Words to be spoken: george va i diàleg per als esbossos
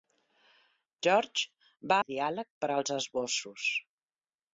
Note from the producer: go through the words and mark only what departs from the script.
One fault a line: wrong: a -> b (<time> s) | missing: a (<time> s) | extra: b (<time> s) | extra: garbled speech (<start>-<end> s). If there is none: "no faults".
no faults